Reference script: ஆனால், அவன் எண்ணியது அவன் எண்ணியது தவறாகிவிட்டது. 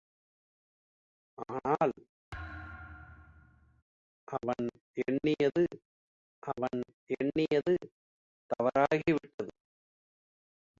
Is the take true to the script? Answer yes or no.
yes